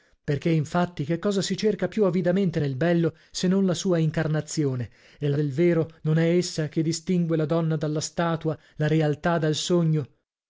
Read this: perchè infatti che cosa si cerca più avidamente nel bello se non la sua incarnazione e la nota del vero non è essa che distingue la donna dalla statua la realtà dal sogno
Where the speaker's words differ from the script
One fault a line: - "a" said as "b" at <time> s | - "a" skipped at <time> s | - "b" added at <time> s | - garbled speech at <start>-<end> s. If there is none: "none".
- "nota" skipped at 5.4 s